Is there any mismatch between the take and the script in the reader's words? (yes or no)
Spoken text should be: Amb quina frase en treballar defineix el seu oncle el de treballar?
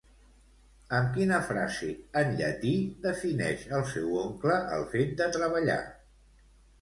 yes